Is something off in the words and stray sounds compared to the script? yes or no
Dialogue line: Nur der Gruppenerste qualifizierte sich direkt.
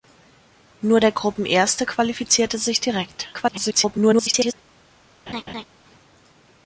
yes